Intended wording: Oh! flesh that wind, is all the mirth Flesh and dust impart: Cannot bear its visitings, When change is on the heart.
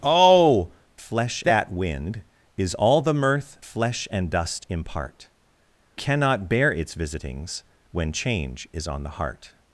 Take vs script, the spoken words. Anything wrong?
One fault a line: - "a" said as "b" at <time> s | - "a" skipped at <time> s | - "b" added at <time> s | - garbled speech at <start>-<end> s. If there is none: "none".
none